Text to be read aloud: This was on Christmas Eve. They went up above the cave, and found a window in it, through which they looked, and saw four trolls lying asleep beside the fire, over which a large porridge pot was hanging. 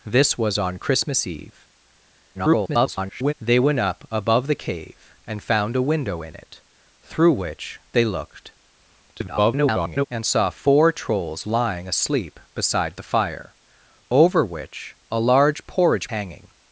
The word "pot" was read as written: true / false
false